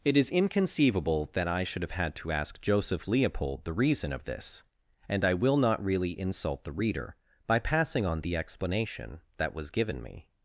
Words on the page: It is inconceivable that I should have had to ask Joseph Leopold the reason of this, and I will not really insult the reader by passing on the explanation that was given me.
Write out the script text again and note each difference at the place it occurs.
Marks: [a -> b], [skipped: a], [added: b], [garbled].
It is inconceivable that I should have had to ask Joseph Leopold the reason of this, and I will not really insult the reader by passing on the explanation that was given me.